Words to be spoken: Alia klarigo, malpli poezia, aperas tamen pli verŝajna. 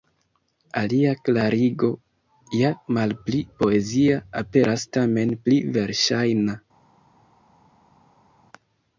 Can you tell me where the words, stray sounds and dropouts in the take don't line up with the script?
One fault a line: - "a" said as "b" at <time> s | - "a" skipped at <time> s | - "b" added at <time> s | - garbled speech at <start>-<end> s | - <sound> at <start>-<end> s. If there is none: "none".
- "ja" added at 2.6 s